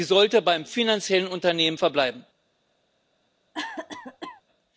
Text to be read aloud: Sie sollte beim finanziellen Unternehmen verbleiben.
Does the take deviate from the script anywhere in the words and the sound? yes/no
yes